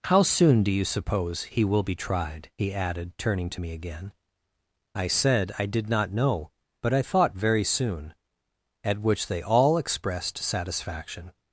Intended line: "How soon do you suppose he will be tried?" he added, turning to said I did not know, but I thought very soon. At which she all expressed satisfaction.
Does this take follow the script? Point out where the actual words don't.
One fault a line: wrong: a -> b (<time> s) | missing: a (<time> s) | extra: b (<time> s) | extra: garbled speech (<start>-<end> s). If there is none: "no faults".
extra: me again I (3.6 s)
wrong: she -> they (9.3 s)